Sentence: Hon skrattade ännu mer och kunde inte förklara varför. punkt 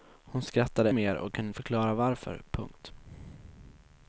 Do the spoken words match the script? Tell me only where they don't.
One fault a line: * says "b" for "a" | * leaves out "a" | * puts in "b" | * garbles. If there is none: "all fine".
* leaves out "ännu"
* leaves out "inte"